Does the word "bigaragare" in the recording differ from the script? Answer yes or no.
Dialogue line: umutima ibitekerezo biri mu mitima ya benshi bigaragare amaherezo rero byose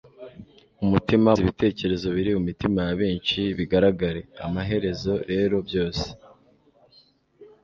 no